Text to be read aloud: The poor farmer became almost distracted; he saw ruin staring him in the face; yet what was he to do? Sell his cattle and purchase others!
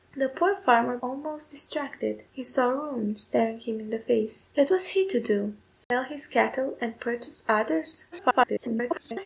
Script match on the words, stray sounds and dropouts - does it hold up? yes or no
no